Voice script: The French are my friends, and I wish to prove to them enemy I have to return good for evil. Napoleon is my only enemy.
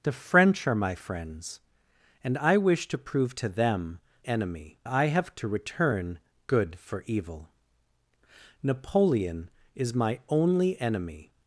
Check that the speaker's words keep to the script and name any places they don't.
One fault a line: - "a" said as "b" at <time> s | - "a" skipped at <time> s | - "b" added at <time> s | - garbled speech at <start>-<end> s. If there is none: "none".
none